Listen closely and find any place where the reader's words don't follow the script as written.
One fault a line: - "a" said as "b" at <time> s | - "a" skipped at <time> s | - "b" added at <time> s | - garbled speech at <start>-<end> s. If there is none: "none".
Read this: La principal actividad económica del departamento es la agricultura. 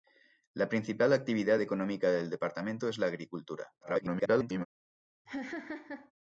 - garbled speech at 3.8-4.7 s